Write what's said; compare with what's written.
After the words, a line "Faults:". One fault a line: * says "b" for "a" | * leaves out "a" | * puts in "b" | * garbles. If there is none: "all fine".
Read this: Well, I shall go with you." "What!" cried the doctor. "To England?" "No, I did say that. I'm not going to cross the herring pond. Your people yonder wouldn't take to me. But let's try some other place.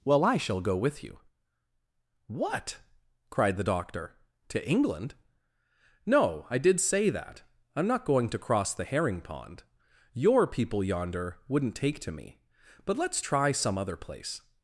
Well, I shall go with you." "What!" cried the doctor. "To England?" "No, I did say that. I'm not going to cross the herring pond. Your people yonder wouldn't take to me. But let's try some other place.
Faults:
all fine